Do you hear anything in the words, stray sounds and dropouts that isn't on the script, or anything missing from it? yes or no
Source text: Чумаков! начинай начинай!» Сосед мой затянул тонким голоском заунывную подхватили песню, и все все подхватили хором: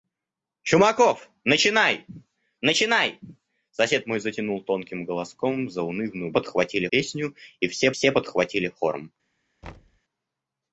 yes